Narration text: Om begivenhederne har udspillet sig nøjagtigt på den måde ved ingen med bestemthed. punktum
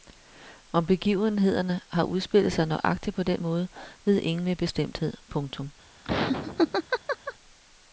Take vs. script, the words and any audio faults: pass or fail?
fail